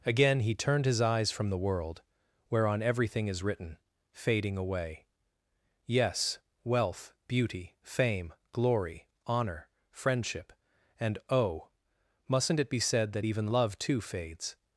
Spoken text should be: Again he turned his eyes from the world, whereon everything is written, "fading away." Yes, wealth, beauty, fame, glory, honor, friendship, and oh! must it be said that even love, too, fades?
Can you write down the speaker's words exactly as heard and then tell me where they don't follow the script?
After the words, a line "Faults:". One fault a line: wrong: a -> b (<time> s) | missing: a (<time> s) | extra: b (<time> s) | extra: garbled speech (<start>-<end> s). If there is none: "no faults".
Again he turned his eyes from the world, whereon everything is written, "fading away." Yes, wealth, beauty, fame, glory, honor, friendship, and oh! mustn't it be said that even love, too, fades?
Faults:
wrong: must -> mustn't (12.3 s)